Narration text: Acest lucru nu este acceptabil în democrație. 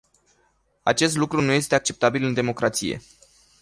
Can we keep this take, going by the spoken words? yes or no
yes